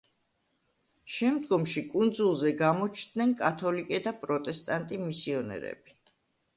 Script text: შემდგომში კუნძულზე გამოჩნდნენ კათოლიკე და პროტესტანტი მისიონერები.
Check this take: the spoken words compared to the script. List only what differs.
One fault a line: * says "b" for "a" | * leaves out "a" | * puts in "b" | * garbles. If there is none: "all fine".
all fine